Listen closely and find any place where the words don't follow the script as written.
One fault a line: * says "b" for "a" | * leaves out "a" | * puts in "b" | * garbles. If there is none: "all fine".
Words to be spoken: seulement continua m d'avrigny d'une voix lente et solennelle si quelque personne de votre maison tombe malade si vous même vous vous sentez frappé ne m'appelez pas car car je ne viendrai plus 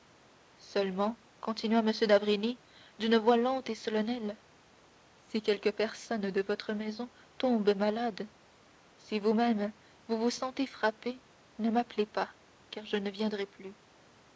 * leaves out "car"